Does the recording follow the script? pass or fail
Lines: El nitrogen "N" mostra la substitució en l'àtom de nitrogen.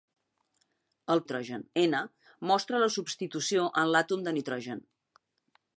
pass